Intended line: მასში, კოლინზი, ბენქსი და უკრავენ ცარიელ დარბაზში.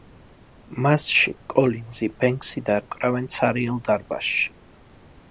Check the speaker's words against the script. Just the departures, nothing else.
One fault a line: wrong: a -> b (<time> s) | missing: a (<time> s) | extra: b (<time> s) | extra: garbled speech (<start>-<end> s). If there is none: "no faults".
no faults